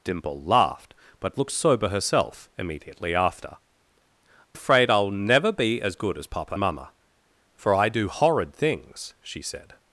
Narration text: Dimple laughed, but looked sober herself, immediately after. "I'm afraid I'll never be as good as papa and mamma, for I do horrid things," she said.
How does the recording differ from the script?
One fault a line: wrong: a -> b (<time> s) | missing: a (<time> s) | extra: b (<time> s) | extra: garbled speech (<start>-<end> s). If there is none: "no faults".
missing: I'm (3.6 s)
missing: and (6.6 s)